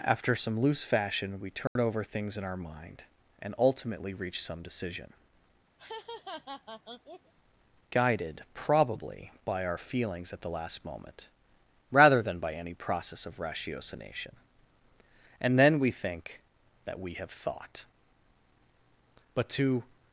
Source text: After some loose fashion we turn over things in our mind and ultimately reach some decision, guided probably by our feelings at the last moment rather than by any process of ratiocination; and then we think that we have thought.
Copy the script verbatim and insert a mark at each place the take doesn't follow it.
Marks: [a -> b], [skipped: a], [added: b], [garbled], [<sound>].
After some loose fashion we turn [dropout] over things in our mind and ultimately reach some decision, [laugh] guided probably by our feelings at the last moment rather than by any process of ratiocination; and then we think that we have thought. [added: But to]